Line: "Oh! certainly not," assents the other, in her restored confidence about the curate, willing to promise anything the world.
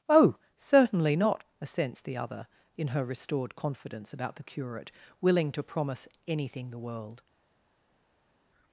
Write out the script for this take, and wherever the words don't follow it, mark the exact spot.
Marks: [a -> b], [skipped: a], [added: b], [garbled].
"Oh! certainly not," assents the other, in her restored confidence about the curate, willing to promise anything the world.